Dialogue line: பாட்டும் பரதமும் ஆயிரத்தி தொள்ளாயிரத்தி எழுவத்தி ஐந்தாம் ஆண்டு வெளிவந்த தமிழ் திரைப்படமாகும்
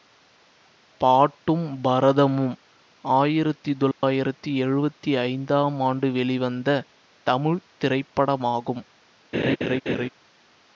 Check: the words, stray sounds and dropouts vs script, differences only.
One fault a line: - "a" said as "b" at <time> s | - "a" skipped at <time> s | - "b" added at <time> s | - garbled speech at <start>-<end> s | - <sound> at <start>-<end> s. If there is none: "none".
- dropout at 3.9-4.0 s
- laugh at 9.3-10.1 s